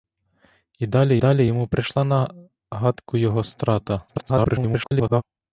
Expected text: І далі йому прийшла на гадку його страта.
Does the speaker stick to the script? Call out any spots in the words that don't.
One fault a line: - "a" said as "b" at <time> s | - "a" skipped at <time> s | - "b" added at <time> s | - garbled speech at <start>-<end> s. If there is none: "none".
- "далі" added at 1.2 s
- garbled speech at 4.1-5.2 s